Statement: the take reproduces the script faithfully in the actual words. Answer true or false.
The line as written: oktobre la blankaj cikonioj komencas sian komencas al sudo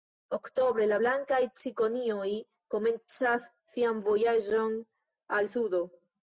false